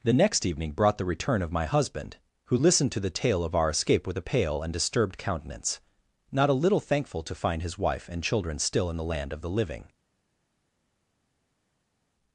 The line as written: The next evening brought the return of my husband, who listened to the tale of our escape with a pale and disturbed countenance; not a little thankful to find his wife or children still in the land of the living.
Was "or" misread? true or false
true